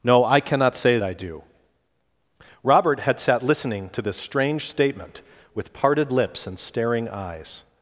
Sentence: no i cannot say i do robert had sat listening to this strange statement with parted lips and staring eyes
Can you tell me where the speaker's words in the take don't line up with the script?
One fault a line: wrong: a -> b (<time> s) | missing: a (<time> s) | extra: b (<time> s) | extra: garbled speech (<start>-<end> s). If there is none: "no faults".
no faults